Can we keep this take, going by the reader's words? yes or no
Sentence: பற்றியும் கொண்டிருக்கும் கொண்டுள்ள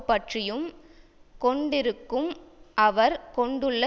no